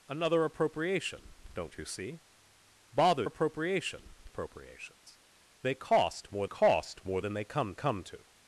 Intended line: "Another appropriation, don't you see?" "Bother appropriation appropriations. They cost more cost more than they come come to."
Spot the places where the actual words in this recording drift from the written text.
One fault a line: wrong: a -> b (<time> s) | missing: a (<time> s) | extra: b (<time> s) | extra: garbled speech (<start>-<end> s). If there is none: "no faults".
no faults